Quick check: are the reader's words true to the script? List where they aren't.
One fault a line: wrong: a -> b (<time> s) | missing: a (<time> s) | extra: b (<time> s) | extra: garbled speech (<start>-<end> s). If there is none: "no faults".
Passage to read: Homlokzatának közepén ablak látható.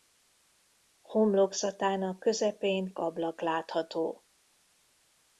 no faults